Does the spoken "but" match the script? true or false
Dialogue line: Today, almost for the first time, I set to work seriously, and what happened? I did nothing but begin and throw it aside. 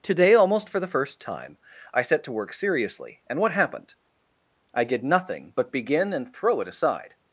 true